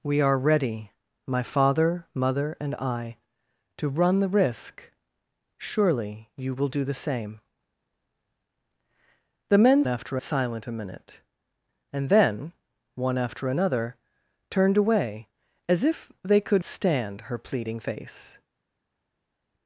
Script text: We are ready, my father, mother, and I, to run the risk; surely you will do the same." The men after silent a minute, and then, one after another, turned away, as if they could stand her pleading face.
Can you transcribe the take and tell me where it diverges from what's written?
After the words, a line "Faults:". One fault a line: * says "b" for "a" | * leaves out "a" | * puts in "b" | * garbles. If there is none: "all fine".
We are ready, my father, mother, and I, to run the risk; surely you will do the same." The men after silent a minute, and then, one after another, turned away, as if they could stand her pleading face.
Faults:
all fine